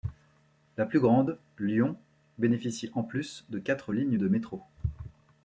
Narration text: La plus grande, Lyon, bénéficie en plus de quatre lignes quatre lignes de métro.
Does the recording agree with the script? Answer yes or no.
no